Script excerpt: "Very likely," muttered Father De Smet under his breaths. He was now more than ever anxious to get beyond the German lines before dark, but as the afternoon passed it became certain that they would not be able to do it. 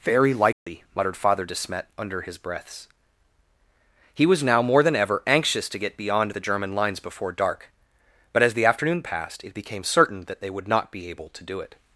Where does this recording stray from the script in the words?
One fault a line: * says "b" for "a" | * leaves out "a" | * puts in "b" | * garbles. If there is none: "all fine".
all fine